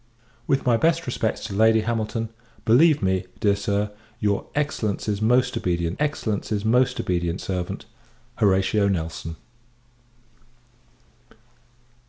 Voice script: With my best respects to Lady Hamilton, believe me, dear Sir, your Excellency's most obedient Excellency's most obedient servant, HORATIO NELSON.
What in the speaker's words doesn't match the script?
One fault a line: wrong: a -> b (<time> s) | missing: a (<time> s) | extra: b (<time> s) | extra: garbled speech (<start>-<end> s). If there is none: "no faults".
no faults